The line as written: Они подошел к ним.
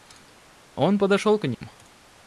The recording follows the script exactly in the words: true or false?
false